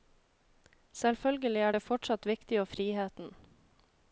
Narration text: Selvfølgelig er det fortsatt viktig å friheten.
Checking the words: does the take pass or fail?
pass